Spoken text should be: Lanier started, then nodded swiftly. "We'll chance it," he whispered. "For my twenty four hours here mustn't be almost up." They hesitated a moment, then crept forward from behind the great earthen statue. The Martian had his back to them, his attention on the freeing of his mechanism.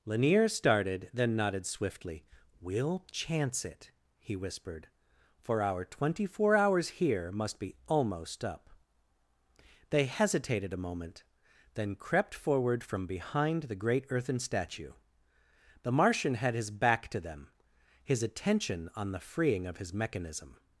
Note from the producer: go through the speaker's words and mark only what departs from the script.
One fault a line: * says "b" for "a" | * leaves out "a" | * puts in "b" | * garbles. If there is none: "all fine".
* says "our" for "my"
* says "must" for "mustn't"